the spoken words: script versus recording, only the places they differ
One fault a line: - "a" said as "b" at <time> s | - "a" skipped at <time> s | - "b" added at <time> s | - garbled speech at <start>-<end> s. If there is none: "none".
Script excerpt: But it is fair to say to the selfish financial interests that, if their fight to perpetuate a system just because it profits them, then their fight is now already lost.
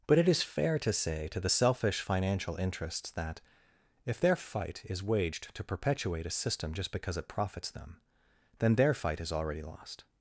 - "is waged" added at 4.8 s
- "now" skipped at 9.3 s